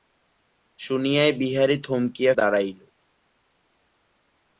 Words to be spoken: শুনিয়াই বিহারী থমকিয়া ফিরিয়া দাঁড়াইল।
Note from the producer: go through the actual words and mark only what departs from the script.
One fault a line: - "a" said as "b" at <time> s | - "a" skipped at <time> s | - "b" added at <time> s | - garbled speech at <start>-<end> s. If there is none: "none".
- "ফিরিয়া" skipped at 2.3 s